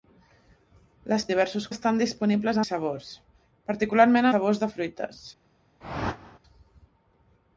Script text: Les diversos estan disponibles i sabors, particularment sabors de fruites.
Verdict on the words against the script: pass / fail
pass